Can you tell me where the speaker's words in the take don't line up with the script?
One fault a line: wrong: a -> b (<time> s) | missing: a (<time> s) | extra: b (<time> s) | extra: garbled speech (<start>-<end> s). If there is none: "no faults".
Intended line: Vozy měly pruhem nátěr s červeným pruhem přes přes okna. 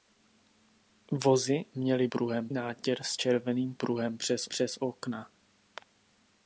no faults